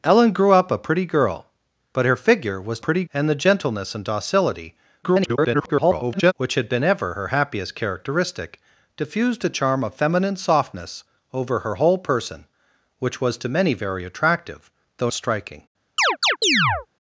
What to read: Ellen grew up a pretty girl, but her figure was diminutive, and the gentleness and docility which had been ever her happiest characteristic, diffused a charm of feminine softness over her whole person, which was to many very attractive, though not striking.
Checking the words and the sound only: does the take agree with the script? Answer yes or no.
no